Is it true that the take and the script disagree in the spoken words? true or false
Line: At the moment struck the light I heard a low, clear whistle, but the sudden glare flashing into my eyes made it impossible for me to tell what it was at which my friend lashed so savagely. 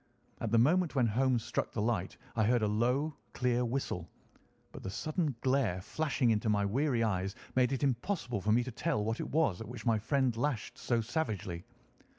true